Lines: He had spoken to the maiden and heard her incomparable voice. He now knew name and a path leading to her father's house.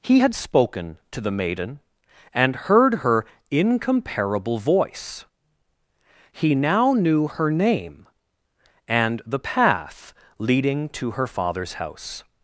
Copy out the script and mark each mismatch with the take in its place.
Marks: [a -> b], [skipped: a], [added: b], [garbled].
He had spoken to the maiden and heard her incomparable voice. He now knew [added: her] name and [a -> the] path leading to her father's house.